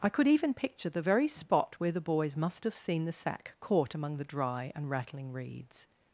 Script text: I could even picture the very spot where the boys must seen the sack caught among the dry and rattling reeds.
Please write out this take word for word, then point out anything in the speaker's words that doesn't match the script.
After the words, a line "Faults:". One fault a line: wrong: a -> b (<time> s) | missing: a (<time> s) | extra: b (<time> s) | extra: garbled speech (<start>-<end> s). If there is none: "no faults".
I could even picture the very spot where the boys must have seen the sack caught among the dry and rattling reeds.
Faults:
extra: have (2.6 s)